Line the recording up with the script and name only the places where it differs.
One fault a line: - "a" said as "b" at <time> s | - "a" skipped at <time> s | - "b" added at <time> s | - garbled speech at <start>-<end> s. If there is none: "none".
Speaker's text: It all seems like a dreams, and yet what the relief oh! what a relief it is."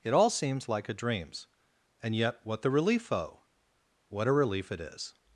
none